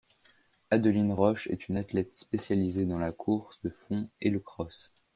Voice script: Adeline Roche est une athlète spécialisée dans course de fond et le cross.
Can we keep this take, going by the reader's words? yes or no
no